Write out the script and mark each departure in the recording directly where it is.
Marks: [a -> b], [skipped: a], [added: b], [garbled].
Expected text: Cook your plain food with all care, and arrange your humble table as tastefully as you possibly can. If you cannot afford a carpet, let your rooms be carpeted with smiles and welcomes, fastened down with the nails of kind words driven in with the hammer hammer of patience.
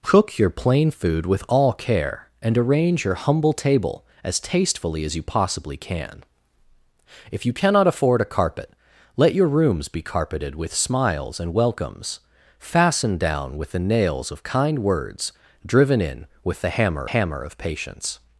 Cook your plain food with all care, and arrange your humble table as tastefully as you possibly can. If you cannot afford a carpet, let your rooms be carpeted with smiles and welcomes, fastened down with the nails of kind words driven in with the hammer hammer of patience.